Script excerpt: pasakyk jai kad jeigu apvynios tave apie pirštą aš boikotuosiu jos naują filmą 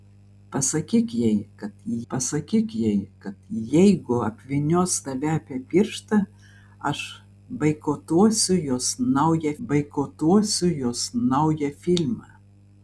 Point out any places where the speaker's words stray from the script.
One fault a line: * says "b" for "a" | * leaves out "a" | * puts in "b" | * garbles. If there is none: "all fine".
* puts in "pasakyk jai kad"
* puts in "boikotuosiu jos naują"